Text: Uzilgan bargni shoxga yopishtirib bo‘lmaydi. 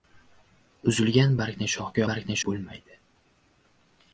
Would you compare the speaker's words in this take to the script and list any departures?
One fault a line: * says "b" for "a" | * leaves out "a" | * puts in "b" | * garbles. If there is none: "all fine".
* says "bargni" for "yopishtirib"